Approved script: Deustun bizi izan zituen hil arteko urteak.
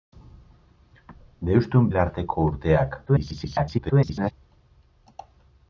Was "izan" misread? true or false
true